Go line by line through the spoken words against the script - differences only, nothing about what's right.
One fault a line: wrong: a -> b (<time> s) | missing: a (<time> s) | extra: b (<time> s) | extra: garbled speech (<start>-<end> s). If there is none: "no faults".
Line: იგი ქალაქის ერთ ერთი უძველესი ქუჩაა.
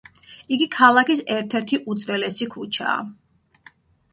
no faults